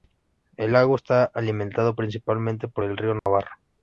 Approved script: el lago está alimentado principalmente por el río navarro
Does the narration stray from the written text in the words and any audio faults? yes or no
yes